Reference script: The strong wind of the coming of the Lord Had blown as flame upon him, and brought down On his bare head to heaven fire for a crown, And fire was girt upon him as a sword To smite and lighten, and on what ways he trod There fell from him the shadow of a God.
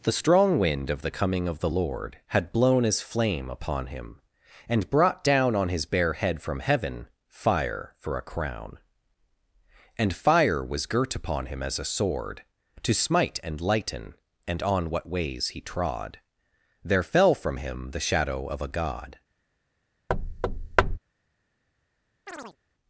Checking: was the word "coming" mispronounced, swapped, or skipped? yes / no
no